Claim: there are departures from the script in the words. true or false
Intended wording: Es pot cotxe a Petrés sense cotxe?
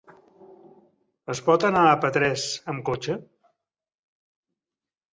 true